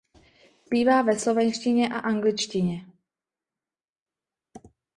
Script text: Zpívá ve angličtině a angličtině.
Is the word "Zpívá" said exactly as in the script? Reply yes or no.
yes